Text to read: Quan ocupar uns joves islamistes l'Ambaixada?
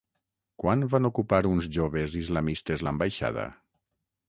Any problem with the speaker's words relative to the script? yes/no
yes